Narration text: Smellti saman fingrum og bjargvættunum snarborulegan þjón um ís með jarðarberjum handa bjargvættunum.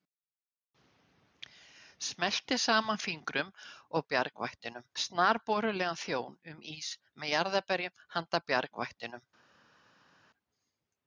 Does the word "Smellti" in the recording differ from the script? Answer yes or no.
no